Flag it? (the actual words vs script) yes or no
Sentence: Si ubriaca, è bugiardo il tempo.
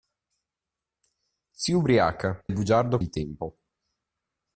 no